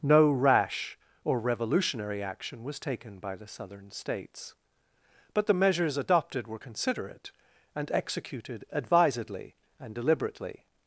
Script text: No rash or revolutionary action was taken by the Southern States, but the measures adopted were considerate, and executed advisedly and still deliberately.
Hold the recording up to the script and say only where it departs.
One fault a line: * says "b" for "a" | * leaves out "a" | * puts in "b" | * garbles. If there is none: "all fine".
* leaves out "still"